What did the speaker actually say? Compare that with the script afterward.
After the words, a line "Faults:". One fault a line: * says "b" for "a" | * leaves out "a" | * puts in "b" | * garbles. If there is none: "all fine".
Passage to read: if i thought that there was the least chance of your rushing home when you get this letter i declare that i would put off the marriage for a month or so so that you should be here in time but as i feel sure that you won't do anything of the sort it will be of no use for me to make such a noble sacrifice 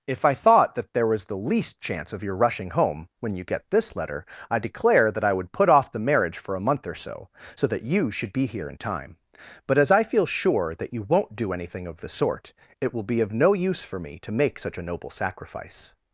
if i thought that there was the least chance of your rushing home when you get this letter i declare that i would put off the marriage for a month or so so that you should be here in time but as i feel sure that you won't do anything of the sort it will be of no use for me to make such a noble sacrifice
Faults:
all fine